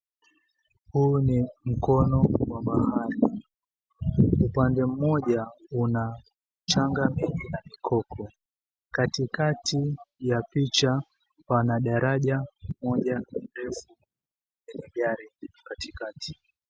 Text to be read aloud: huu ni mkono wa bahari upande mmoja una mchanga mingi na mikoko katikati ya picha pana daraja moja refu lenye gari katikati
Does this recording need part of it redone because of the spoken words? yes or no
no